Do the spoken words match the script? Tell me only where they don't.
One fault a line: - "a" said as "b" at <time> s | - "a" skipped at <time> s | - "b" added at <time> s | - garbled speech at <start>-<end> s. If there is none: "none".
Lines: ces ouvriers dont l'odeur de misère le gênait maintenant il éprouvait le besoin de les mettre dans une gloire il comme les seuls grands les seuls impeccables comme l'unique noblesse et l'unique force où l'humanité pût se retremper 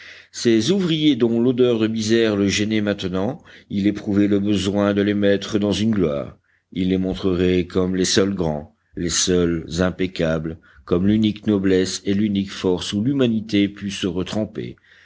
- "les montrerait" added at 6.9 s